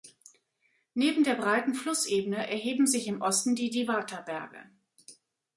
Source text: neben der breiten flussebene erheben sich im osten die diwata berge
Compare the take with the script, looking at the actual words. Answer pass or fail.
pass